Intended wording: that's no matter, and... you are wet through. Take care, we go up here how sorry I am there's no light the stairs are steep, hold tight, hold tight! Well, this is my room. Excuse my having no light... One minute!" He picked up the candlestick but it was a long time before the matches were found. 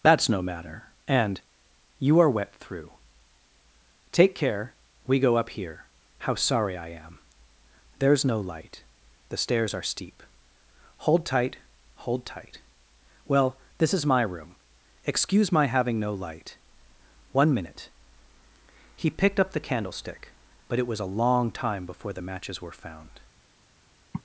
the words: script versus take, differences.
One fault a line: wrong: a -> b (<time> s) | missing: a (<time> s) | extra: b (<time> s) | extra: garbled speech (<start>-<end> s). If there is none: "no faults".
no faults